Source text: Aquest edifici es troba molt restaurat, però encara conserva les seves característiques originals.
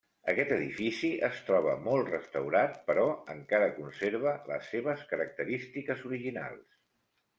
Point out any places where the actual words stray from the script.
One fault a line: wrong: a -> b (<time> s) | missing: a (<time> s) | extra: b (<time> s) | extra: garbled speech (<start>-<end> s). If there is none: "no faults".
no faults